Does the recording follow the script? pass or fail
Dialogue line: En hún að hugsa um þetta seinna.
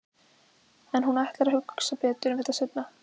fail